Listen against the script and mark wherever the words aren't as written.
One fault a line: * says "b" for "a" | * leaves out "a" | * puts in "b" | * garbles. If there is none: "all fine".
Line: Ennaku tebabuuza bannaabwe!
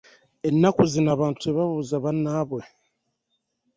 * puts in "zino abantu"